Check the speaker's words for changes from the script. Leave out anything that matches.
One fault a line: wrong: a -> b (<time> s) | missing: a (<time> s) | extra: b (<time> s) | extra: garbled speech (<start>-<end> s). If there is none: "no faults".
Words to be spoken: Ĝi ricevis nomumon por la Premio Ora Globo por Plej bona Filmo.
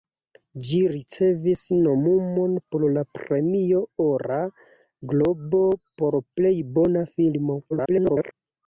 extra: garbled speech (7.7-8.3 s)